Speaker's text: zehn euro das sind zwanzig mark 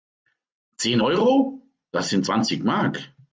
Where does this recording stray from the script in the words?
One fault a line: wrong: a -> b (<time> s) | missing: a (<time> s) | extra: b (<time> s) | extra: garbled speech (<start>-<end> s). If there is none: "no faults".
no faults